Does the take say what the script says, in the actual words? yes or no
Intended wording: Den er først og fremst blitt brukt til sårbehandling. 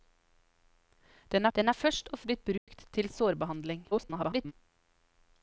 no